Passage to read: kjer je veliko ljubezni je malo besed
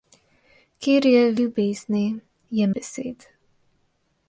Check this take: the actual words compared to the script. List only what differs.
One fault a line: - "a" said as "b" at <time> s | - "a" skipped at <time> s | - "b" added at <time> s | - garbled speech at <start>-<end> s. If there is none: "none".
- "veliko" skipped at 1.2 s
- "malo" skipped at 2.7 s